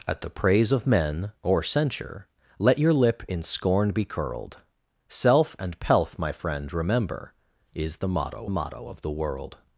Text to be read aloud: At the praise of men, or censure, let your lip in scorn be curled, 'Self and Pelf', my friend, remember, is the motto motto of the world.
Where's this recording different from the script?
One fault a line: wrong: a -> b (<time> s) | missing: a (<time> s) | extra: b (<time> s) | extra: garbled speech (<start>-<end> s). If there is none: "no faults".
no faults